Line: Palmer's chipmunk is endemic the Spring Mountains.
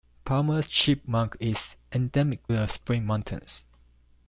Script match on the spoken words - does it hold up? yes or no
yes